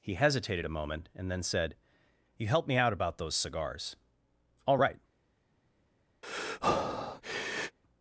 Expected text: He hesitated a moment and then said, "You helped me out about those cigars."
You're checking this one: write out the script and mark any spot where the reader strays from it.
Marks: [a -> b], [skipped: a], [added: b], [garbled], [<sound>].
He hesitated a moment and then said, "You helped me out about those cigars." [added: All right] [breath]